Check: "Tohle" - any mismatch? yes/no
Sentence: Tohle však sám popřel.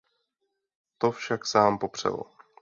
yes